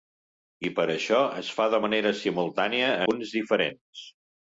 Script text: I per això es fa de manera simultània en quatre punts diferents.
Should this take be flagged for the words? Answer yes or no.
yes